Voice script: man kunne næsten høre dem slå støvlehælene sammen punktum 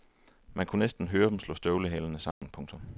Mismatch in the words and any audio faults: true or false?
true